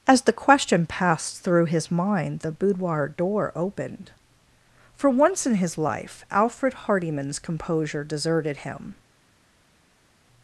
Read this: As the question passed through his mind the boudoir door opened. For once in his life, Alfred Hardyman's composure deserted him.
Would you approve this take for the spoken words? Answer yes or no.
yes